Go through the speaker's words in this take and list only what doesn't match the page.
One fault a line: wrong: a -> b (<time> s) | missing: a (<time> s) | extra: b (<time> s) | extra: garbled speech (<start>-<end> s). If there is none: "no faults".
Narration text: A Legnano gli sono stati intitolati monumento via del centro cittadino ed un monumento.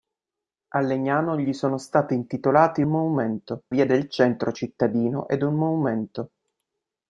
no faults